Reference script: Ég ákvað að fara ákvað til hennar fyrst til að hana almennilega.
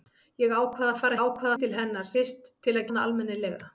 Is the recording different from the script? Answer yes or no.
no